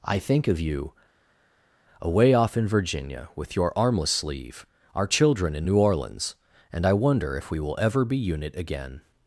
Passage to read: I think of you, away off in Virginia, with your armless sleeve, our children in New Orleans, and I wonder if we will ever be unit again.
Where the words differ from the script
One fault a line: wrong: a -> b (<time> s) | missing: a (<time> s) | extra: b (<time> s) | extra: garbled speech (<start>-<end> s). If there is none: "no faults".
no faults